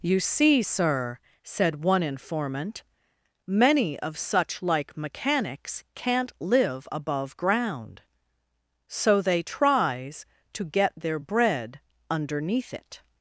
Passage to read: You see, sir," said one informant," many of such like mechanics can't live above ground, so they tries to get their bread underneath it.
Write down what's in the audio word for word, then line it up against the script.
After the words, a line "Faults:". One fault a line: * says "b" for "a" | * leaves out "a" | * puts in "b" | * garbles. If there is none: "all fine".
You see, sir," said one informant," many of such like mechanics can't live above ground, so they tries to get their bread underneath it.
Faults:
all fine